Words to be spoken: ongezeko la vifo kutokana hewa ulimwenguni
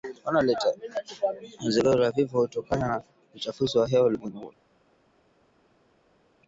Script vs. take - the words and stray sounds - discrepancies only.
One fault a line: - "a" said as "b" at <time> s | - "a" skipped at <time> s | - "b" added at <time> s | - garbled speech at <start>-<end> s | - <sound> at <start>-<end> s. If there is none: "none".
- "na uchafuzi wa" added at 2.9 s